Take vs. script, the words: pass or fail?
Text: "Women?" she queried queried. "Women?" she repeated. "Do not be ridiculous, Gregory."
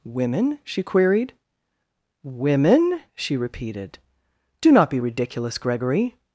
fail